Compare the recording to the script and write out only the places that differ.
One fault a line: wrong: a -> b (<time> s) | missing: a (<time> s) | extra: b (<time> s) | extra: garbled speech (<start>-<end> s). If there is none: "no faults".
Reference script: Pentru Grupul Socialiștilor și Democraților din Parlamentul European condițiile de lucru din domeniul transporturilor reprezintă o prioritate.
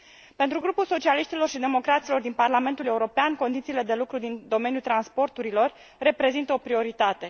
no faults